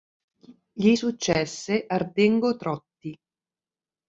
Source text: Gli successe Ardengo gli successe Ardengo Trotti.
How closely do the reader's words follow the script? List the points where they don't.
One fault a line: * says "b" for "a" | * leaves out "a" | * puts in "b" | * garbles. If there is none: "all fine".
* leaves out "gli successe Ardengo"